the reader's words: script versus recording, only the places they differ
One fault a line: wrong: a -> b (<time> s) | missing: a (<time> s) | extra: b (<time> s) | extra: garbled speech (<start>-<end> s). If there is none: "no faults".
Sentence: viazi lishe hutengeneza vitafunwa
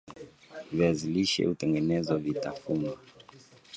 no faults